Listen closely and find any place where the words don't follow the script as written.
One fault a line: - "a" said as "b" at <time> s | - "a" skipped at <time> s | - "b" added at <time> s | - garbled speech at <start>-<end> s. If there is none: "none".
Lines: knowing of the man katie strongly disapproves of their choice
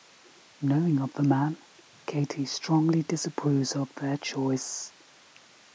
none